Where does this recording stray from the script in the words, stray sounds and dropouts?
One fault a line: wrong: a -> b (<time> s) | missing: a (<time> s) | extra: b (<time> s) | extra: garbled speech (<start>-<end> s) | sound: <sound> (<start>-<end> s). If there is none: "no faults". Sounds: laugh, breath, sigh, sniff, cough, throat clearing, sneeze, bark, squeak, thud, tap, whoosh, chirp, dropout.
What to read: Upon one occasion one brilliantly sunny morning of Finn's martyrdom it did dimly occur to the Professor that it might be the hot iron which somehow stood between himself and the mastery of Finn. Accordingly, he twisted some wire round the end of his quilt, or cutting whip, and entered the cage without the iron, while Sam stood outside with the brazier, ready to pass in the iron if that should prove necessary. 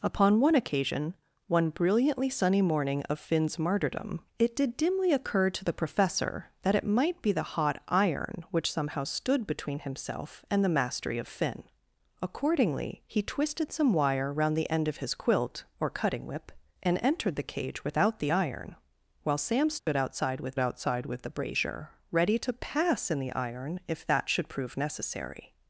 sound: dropout (19.8-19.9 s)
extra: outside with (20.6 s)